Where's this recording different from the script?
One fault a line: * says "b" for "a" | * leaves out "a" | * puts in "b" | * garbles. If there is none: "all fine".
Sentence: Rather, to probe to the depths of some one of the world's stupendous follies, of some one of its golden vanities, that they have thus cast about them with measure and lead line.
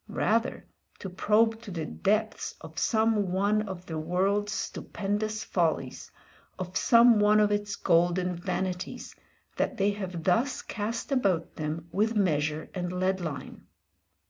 all fine